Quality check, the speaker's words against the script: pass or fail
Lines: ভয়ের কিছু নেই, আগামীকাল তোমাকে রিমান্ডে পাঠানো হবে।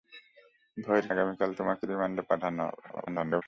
fail